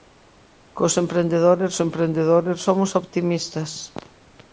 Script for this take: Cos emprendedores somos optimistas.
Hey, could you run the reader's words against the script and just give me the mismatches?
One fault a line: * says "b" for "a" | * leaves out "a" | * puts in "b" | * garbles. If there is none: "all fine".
* puts in "emprendedores"